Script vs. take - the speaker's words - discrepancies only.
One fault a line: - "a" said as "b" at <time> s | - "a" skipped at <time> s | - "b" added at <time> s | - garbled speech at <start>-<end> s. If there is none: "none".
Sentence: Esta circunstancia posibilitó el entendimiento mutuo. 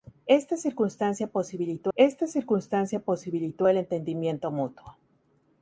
- "esta circunstancia posibilitó" added at 1.9 s